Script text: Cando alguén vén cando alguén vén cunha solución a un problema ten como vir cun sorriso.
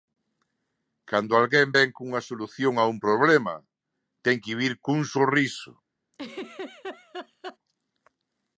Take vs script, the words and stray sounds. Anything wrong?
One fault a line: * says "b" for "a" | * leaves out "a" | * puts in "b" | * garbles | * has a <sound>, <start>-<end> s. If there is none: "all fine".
* leaves out "cando alguén vén"
* says "que" for "como"
* has a laugh, 6.1-7.6 s